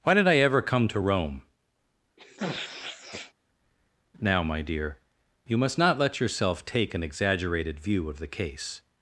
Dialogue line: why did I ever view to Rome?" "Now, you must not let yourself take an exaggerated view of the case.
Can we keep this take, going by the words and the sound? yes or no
no